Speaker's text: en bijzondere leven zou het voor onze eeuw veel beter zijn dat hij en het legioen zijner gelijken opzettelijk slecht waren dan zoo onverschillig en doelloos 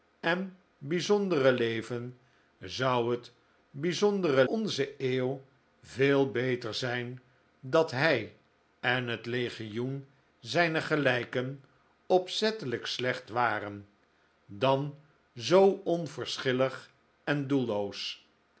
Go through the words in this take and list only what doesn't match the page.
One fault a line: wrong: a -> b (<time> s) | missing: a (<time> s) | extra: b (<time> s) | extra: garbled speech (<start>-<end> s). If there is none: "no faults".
wrong: voor -> bijzondere (3.7 s)